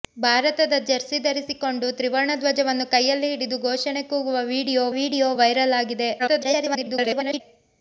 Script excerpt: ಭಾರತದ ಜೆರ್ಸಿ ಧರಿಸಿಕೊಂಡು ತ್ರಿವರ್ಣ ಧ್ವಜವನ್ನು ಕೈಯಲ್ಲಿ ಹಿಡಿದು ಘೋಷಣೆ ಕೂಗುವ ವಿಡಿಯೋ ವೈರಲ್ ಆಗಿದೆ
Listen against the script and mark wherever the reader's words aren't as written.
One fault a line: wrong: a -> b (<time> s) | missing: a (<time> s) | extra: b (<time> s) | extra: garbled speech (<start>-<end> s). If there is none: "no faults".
extra: ವಿಡಿಯೋ (5.0 s)
extra: garbled speech (6.2-7.4 s)